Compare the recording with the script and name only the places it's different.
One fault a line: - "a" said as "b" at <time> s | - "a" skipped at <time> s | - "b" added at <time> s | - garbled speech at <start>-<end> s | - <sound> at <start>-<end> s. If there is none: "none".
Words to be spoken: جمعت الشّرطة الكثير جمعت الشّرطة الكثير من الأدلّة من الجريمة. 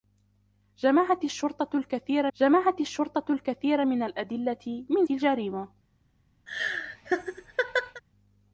- laugh at 6.5-8.0 s